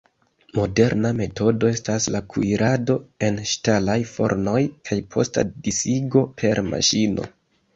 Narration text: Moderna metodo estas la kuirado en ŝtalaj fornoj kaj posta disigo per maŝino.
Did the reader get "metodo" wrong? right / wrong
right